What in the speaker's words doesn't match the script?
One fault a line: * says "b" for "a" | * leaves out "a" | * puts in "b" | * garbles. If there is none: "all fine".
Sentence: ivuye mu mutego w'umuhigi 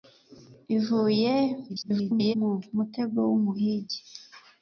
* garbles